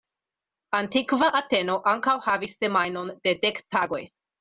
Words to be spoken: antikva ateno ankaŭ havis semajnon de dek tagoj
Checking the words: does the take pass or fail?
pass